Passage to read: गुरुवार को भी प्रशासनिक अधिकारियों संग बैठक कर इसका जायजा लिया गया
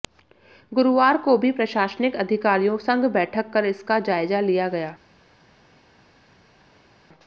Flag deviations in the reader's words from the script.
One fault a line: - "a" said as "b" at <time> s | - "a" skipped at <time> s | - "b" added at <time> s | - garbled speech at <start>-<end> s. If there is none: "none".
none